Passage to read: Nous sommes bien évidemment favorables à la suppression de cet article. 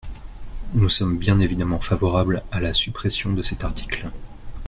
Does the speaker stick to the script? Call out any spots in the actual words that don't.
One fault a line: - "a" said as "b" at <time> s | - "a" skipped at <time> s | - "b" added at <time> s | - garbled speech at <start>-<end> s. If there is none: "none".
none